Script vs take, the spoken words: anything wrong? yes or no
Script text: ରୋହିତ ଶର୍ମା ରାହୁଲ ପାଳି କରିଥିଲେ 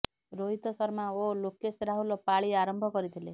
yes